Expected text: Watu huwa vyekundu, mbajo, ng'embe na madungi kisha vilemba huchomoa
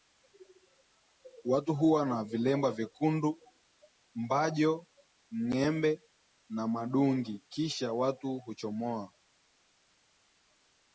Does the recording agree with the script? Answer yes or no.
no